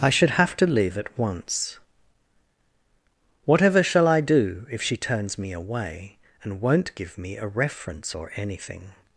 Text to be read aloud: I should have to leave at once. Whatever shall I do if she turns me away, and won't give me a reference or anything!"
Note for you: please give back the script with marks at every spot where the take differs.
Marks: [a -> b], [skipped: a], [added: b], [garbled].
I should have to leave at once. Whatever shall I do if she turns me away, and won't give me a reference or anything!"